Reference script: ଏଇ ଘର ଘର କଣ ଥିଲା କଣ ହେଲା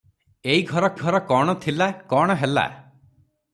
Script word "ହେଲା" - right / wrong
right